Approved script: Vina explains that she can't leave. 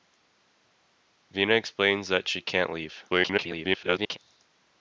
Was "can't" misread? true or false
false